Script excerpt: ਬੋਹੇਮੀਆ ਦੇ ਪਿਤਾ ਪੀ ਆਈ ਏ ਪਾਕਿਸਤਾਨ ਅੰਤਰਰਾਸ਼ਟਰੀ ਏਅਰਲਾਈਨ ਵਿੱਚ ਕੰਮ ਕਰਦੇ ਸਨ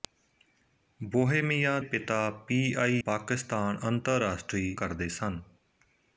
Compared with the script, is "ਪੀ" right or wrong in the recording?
right